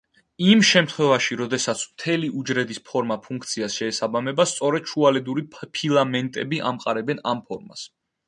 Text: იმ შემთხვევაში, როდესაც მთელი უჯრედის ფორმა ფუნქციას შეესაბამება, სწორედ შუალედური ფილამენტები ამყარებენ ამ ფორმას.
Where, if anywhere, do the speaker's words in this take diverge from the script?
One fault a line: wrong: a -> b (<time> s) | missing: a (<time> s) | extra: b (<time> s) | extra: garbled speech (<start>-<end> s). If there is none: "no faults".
no faults